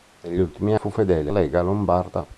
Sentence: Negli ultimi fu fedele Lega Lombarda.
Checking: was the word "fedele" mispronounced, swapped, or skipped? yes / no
no